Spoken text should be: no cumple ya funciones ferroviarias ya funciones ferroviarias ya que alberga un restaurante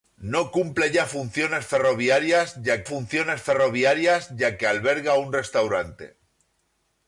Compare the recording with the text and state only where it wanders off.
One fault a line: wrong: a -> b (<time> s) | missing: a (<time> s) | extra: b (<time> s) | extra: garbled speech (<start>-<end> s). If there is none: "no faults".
no faults